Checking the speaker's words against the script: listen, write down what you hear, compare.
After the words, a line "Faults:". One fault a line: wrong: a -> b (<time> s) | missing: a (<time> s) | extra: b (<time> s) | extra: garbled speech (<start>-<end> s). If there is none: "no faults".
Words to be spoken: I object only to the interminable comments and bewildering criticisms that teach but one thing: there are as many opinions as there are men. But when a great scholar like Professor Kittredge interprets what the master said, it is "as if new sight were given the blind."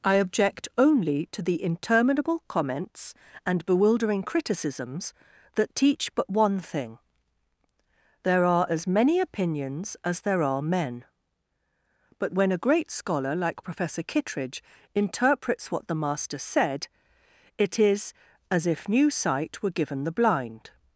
I object only to the interminable comments and bewildering criticisms that teach but one thing: there are as many opinions as there are men. But when a great scholar like Professor Kittredge interprets what the master said, it is "as if new sight were given the blind."
Faults:
no faults